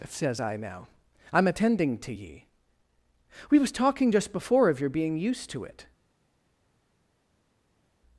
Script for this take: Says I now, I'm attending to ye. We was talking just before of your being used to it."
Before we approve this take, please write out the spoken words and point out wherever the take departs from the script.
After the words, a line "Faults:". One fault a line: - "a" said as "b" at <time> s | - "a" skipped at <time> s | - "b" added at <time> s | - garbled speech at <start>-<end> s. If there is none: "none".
Says I now, I'm attending to ye. We was talking just before of your being used to it."
Faults:
none